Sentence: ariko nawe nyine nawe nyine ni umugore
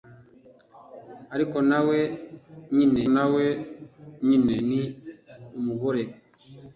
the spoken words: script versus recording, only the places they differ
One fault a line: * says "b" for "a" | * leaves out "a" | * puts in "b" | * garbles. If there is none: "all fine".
all fine